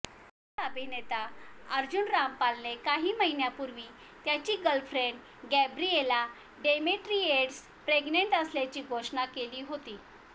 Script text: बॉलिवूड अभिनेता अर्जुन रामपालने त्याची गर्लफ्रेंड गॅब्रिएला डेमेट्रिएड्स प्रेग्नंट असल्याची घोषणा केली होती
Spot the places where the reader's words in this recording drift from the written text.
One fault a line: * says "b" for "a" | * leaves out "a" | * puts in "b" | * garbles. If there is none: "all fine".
* puts in "काही महिन्यांपूर्वी"